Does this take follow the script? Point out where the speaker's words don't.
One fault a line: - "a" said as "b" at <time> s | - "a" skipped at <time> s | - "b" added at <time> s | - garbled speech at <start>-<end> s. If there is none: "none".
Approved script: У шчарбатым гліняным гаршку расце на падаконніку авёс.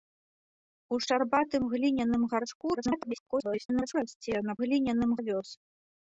- garbled speech at 2.7-3.9 s
- "падаконніку" said as "гліняным" at 4.6 s